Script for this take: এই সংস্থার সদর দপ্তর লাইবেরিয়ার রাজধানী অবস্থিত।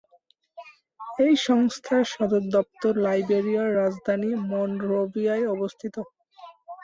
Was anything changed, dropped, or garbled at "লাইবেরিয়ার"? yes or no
no